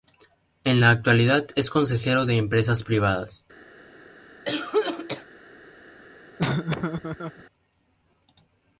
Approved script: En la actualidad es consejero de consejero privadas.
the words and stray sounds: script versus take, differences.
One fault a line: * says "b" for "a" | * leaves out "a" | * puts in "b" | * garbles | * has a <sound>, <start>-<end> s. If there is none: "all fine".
* says "empresas" for "consejero"
* has a cough, 4.5-5.3 s
* has a laugh, 6.4-7.4 s